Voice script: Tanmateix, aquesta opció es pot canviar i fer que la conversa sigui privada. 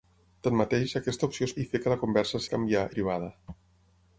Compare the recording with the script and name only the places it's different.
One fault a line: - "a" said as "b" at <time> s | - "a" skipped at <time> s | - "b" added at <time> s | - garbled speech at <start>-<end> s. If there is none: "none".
- "pot canviar" skipped at 1.5 s
- "sigui" said as "canviar" at 2.5 s